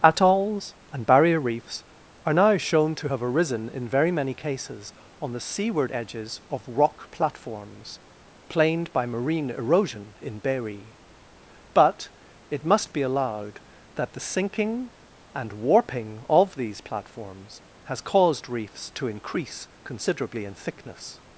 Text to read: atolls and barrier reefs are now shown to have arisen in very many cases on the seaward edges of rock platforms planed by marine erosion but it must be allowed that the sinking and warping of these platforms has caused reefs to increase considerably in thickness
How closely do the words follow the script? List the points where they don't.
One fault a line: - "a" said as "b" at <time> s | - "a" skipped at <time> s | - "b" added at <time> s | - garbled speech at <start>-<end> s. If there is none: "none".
- "in berry" added at 10.2 s